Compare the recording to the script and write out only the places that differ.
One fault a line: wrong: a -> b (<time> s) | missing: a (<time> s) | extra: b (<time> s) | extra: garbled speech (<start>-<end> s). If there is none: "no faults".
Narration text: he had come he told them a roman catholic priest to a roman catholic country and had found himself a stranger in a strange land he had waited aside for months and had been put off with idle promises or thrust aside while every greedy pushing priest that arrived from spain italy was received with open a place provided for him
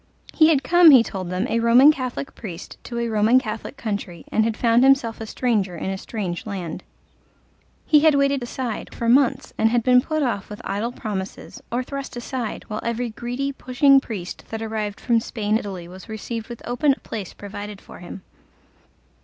no faults